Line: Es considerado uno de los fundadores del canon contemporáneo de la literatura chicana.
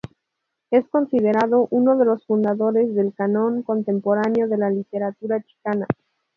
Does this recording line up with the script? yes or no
yes